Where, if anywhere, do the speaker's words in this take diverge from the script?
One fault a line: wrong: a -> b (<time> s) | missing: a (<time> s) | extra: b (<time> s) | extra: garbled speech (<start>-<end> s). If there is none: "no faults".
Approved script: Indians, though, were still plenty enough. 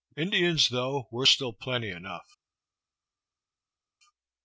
no faults